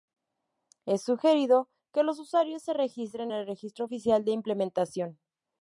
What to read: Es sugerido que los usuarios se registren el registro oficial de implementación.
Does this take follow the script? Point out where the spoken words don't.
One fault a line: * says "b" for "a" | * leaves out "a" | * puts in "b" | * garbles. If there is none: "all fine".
all fine